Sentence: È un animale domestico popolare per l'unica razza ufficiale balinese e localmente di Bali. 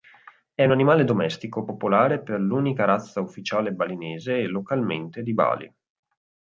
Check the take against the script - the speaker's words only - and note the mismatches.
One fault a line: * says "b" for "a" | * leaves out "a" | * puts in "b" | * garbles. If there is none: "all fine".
all fine